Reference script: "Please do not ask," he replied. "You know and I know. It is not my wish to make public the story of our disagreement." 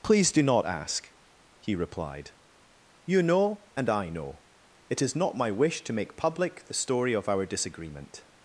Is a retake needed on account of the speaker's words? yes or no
no